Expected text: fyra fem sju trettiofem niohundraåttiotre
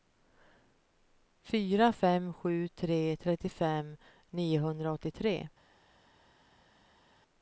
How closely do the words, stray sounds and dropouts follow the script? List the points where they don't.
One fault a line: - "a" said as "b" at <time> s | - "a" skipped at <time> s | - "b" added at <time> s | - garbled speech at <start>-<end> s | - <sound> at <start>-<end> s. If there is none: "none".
- "tre" added at 2.7 s